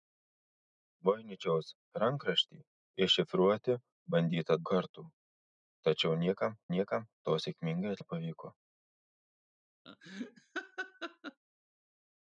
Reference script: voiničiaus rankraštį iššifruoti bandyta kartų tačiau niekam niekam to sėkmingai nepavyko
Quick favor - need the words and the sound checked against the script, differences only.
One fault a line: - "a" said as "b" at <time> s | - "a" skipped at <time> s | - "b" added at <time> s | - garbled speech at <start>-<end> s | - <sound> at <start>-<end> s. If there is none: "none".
- laugh at 9.9-11.4 s